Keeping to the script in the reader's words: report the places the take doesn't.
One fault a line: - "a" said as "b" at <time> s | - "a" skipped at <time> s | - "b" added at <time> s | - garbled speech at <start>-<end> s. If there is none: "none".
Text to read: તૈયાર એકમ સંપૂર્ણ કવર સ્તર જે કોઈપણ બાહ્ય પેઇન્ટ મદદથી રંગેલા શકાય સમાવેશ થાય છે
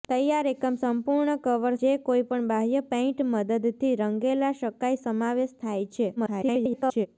- "સ્તર" skipped at 1.8 s
- garbled speech at 6.2-7.1 s